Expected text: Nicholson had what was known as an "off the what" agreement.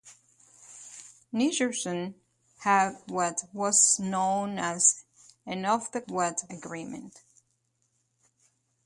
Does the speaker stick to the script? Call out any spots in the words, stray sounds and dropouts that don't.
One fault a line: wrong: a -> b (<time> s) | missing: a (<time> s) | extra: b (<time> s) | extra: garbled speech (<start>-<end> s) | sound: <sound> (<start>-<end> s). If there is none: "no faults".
no faults